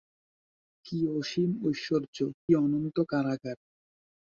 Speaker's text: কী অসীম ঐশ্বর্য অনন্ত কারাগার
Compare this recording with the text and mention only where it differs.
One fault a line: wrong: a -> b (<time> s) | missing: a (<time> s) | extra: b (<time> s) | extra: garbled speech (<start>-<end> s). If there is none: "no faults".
no faults